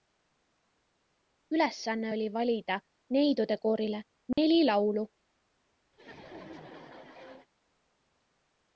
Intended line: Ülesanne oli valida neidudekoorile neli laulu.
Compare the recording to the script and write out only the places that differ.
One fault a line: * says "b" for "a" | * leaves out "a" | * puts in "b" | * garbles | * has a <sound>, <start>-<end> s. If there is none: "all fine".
* has a dropout, 4.3-4.4 s
* has a laugh, 5.9-7.5 s